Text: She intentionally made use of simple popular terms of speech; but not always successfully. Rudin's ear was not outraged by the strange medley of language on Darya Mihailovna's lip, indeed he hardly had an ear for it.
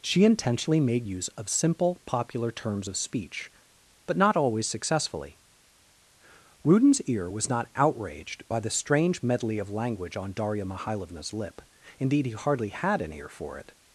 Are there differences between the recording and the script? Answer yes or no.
no